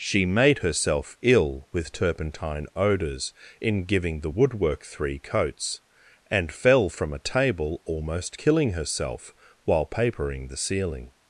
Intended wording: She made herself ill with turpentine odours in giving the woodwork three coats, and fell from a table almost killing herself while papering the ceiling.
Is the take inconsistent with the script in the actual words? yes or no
no